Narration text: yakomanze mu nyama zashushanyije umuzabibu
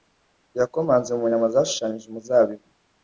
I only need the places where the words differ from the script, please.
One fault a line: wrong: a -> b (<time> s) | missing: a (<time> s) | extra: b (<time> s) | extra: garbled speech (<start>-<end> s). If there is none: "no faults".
no faults